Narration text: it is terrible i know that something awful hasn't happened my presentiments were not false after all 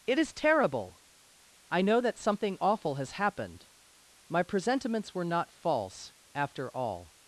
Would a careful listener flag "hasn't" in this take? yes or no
yes